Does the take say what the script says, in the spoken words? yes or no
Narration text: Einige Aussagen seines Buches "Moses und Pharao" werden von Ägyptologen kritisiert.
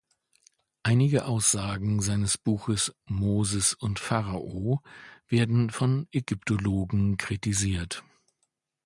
yes